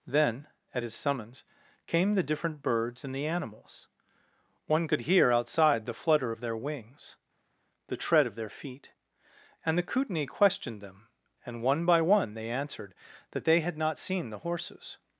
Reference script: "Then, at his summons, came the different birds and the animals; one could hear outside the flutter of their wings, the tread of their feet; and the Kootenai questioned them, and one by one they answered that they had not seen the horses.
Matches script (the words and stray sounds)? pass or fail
pass